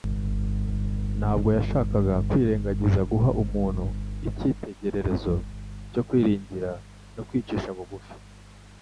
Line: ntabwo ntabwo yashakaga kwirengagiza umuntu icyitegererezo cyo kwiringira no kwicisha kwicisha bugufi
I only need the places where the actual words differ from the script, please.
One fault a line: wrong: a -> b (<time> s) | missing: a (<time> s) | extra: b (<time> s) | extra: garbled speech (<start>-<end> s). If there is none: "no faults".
missing: ntabwo (1.5 s)
extra: guha (3.1 s)
missing: kwicisha (7.7 s)